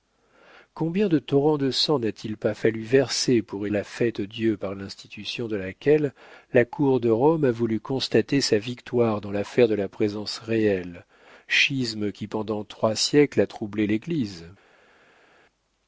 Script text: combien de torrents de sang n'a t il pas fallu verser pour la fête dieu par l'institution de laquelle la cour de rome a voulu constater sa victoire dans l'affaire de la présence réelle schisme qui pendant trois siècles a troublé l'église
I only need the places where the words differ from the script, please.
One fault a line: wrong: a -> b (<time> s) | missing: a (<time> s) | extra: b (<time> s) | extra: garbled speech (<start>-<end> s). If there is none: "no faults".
no faults